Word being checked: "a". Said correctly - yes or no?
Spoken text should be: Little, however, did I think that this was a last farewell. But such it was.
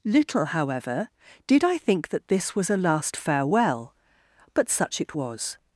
yes